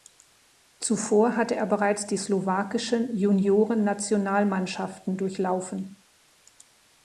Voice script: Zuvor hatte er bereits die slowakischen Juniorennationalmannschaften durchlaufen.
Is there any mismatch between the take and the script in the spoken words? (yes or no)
no